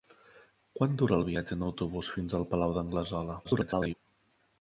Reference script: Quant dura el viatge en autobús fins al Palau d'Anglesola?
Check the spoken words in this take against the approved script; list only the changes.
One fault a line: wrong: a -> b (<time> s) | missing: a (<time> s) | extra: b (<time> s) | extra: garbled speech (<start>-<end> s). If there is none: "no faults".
extra: garbled speech (3.4-3.9 s)